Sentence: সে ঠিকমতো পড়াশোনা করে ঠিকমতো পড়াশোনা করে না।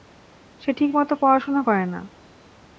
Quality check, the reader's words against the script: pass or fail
fail